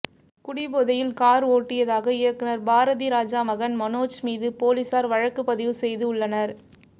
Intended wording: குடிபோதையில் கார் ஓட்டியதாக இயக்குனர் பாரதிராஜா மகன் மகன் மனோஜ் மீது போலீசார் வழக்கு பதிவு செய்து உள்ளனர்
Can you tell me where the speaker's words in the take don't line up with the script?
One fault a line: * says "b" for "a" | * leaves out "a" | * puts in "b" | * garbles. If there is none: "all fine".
* leaves out "மகன்"